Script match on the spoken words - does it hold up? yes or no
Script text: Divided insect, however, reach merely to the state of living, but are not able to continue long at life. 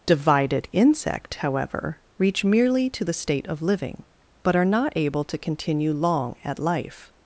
yes